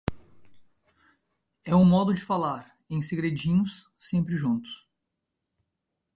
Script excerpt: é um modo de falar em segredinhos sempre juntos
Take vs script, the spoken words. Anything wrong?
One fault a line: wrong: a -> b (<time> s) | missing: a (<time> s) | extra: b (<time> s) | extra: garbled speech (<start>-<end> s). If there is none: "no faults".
no faults